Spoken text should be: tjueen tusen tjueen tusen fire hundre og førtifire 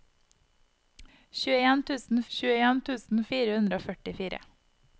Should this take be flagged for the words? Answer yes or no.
no